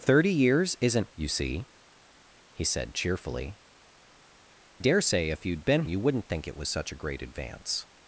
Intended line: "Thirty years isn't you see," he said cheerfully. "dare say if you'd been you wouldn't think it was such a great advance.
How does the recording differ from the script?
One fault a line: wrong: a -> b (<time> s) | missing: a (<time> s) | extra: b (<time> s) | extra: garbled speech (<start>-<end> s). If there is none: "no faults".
no faults